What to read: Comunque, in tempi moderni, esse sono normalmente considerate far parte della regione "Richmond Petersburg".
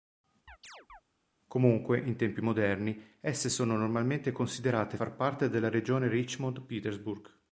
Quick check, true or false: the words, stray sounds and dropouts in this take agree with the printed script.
false